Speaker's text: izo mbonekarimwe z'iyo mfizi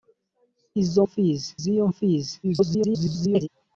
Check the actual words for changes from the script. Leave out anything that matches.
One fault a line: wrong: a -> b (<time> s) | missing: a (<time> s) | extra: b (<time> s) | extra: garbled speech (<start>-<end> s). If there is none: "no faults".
wrong: mbonekarimwe -> mfizi (1.1 s)
extra: garbled speech (2.4-3.5 s)